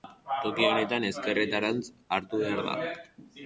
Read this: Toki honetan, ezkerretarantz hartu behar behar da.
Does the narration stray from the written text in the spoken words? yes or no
yes